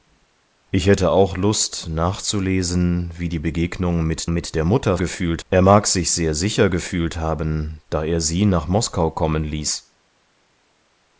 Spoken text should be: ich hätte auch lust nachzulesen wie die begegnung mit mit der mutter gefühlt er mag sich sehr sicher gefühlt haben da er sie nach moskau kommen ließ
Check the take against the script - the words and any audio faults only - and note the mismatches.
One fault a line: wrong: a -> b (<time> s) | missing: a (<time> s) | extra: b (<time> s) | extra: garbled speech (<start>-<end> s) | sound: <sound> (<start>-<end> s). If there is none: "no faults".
no faults